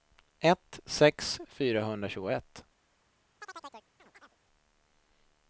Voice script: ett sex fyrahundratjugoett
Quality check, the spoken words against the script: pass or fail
pass